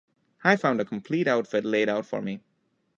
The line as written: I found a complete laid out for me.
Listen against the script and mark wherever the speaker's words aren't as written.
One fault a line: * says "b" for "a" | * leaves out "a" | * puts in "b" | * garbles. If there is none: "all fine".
* puts in "outfit"